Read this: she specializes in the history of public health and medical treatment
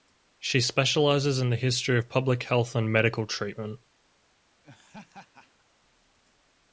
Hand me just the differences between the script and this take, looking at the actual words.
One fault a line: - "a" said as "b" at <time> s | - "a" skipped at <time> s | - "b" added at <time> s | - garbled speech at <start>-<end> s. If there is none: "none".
none